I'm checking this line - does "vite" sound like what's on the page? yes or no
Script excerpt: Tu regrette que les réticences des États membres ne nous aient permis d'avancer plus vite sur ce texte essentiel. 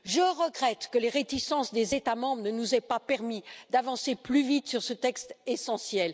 yes